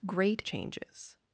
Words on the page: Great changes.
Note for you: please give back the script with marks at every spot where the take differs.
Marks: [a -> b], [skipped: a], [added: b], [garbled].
Great changes.